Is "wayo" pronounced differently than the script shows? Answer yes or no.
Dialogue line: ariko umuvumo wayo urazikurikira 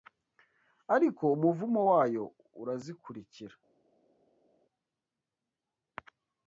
no